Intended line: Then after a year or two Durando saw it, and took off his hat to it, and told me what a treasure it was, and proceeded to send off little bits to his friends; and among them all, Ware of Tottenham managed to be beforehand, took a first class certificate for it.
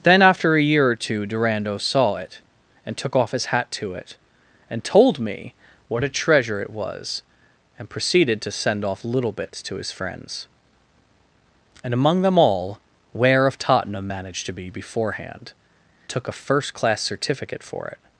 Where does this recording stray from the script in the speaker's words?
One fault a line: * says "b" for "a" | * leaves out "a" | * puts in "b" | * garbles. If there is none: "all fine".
all fine